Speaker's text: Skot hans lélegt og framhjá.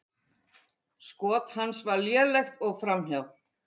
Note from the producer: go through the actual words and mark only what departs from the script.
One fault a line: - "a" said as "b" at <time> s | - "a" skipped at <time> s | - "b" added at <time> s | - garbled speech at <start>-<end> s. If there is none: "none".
- "var" added at 1.9 s